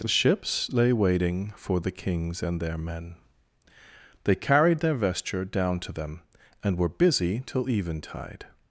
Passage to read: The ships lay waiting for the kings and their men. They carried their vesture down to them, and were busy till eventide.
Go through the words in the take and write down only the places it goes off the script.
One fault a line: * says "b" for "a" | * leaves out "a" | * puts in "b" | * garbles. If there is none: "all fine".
all fine